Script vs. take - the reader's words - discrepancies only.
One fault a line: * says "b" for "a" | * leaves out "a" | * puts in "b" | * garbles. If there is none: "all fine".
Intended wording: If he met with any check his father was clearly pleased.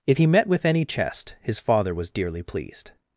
* says "chest" for "check"
* says "dearly" for "clearly"